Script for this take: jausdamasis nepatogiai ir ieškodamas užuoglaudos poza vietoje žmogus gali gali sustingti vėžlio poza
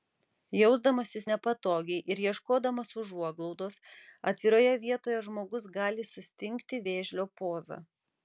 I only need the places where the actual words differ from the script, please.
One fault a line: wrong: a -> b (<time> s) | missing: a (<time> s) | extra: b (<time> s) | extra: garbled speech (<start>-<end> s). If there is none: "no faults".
wrong: poza -> atviroje (4.3 s)
missing: gali (6.1 s)